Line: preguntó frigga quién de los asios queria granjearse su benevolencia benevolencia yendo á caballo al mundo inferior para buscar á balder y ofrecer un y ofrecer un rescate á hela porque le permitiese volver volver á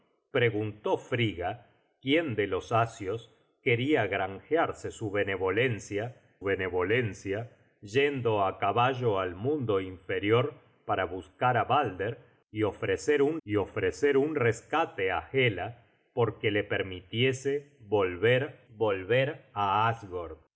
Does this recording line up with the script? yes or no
yes